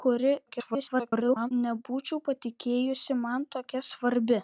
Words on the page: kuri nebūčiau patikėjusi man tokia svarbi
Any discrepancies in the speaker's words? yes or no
yes